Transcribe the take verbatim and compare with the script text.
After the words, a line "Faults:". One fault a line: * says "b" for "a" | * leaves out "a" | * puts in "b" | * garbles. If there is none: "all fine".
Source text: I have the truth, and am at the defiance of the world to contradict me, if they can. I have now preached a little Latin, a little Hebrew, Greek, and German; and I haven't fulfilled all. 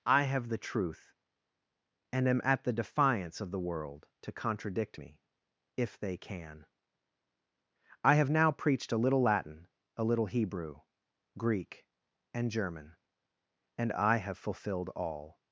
I have the truth, and am at the defiance of the world to contradict me, if they can. I have now preached a little Latin, a little Hebrew, Greek, and German; and I have fulfilled all.
Faults:
* says "have" for "haven't"